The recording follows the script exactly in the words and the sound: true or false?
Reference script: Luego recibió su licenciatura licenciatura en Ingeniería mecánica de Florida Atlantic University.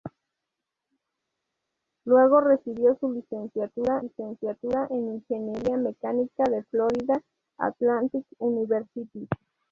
true